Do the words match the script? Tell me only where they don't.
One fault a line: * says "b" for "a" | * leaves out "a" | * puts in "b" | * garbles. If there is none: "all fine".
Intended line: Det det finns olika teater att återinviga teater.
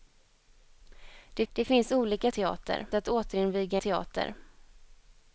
all fine